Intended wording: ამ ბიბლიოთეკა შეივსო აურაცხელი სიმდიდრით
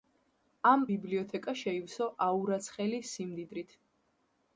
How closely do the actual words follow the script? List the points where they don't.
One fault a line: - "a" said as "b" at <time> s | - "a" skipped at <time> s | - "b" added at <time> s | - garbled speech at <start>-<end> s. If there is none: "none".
none